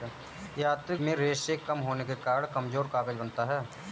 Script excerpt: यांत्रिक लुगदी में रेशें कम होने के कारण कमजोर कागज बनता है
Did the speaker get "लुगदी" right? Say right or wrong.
wrong